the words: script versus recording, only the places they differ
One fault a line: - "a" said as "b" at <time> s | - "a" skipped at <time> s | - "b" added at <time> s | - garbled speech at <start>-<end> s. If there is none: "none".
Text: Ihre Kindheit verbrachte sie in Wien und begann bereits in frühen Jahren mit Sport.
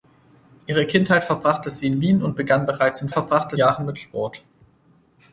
- "frühen" said as "verbrachte" at 3.1 s